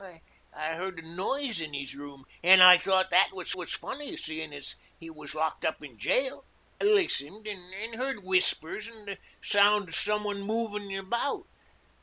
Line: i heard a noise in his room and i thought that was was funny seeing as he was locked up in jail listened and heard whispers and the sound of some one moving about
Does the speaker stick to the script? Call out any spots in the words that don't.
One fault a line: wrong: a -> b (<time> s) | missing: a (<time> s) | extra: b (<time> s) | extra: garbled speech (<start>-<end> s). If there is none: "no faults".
no faults